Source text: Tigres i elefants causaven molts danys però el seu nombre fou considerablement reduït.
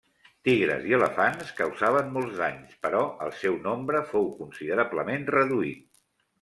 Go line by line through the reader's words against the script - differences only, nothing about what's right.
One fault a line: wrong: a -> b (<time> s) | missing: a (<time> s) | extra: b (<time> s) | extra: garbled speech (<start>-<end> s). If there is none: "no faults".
no faults